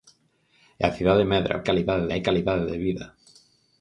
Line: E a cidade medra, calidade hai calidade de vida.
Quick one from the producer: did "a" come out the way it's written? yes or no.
yes